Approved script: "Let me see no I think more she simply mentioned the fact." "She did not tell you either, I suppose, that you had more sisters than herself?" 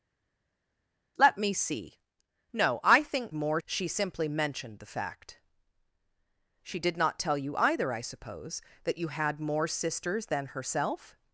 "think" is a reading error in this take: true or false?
false